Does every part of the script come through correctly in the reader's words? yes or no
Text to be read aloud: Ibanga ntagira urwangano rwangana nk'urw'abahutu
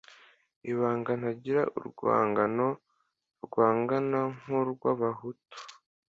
yes